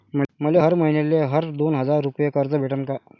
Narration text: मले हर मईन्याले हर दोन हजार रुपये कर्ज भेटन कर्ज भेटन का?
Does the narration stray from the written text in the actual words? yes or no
yes